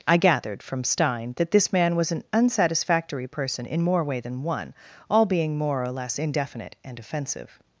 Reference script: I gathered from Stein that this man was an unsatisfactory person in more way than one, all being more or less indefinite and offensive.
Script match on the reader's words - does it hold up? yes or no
yes